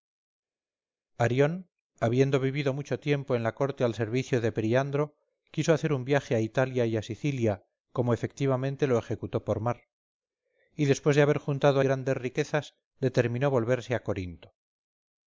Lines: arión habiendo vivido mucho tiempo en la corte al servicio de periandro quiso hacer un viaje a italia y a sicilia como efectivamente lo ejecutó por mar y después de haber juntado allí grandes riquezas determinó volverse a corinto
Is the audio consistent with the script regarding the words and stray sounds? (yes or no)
no